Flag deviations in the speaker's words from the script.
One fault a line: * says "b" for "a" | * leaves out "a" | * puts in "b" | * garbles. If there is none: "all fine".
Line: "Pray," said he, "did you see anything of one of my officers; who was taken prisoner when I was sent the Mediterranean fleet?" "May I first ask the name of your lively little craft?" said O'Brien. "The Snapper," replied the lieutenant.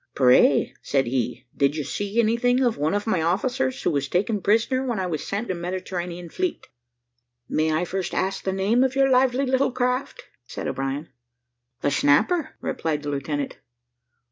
all fine